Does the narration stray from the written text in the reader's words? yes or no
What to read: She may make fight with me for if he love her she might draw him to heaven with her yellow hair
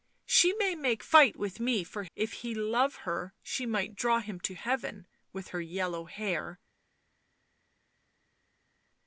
no